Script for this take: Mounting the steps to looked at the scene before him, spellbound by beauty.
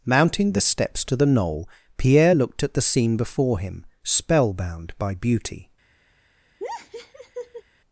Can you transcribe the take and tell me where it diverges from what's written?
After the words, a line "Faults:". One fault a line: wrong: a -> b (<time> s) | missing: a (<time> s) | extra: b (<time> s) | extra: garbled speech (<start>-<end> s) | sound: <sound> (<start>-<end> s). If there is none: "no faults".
Mounting the steps to the knoll Pierre looked at the scene before him, spellbound by beauty.
Faults:
extra: the knoll Pierre (1.1 s)
sound: laugh (6.6-7.6 s)